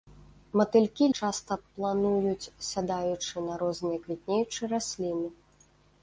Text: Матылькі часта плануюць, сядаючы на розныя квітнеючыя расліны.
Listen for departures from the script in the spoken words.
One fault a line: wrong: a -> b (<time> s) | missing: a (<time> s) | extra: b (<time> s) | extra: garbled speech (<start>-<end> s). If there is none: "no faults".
no faults